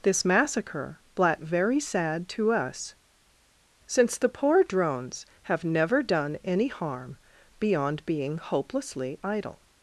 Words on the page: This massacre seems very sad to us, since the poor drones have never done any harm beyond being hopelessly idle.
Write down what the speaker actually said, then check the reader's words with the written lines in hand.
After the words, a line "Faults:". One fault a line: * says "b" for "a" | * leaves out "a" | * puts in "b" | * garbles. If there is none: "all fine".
This massacre blat very sad to us, since the poor drones have never done any harm beyond being hopelessly idle.
Faults:
* says "blat" for "seems"